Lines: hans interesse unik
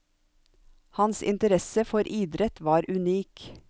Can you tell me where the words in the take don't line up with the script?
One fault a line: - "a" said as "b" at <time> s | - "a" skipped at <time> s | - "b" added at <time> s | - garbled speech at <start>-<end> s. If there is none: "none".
- "for idrett var" added at 1.9 s